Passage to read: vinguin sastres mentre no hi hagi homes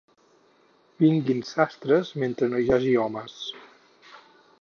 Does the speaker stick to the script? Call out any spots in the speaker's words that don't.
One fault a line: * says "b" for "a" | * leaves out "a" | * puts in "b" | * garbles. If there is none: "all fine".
all fine